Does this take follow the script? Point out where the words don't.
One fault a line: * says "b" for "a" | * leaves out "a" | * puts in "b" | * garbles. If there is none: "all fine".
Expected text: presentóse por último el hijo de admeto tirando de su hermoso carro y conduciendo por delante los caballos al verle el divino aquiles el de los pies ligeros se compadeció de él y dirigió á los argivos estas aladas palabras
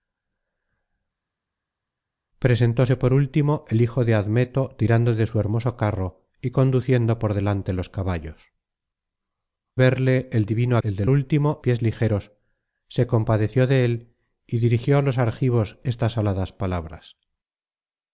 * leaves out "al"
* leaves out "aquiles"
* says "último" for "los"